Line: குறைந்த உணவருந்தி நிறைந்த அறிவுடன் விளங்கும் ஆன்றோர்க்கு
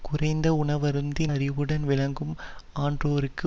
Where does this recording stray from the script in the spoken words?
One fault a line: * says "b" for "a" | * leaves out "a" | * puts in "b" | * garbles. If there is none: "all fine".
* leaves out "நிறைந்த"